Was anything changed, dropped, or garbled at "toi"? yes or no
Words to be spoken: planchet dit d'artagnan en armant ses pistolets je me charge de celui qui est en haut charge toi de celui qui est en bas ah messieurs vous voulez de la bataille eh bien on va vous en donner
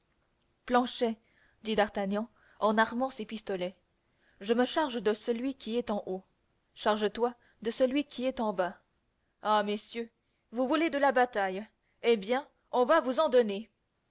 no